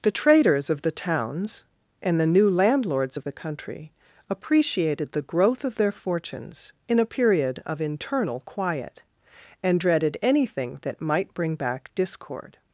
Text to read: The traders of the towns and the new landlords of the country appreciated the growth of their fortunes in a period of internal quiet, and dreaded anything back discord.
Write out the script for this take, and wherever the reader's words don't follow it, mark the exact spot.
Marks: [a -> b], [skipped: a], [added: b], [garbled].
The traders of the towns and the new landlords of the country appreciated the growth of their fortunes in a period of internal quiet, and dreaded anything [added: that might bring] back discord.